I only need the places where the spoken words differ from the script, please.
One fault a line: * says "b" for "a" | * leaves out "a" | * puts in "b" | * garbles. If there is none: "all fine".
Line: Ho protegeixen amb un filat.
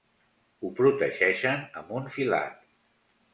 all fine